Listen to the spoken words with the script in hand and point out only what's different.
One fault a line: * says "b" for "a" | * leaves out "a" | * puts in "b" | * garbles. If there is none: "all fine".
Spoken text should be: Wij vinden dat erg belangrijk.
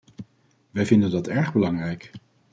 all fine